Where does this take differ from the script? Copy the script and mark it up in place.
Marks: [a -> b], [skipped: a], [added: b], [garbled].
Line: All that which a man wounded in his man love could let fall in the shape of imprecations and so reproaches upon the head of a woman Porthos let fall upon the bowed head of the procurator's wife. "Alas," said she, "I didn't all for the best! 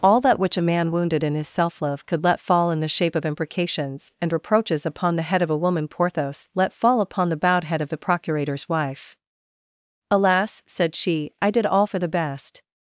All that which a man wounded in his [man -> self] love could let fall in the shape of imprecations and [skipped: so] reproaches upon the head of a woman Porthos let fall upon the bowed head of the procurator's wife. "Alas," said she, "I [didn't -> did] all for the best!